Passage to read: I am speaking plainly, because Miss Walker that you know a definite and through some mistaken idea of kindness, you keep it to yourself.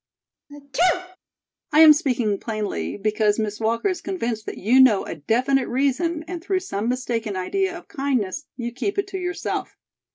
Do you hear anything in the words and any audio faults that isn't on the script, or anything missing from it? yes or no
yes